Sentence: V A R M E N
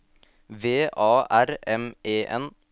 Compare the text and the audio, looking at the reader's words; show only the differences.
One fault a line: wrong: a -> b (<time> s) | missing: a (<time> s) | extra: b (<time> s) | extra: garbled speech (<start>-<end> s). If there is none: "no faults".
no faults